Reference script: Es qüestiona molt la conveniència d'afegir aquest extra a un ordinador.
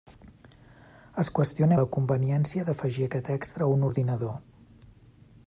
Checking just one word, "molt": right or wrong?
wrong